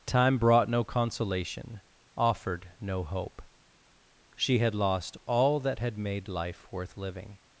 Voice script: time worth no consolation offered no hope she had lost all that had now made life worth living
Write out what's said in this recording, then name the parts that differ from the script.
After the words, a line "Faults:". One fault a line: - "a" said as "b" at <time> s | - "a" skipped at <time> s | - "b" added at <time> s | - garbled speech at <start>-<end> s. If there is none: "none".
time brought no consolation offered no hope she had lost all that had made life worth living
Faults:
- "worth" said as "brought" at 0.4 s
- "now" skipped at 6.0 s